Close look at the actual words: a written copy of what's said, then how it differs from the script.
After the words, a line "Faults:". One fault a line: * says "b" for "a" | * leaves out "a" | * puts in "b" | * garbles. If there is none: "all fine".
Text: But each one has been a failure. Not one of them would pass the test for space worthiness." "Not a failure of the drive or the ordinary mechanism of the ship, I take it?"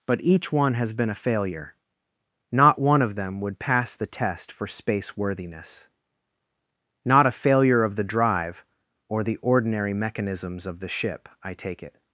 But each one has been a failure. Not one of them would pass the test for space worthiness." "Not a failure of the drive or the ordinary mechanisms of the ship, I take it?"
Faults:
* says "mechanisms" for "mechanism"